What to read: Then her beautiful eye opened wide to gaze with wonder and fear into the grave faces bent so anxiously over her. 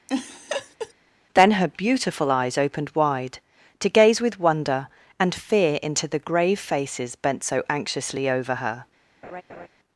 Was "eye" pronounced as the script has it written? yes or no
no